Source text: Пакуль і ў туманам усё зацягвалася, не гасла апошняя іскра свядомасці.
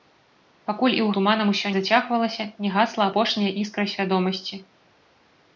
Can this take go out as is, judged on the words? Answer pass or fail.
pass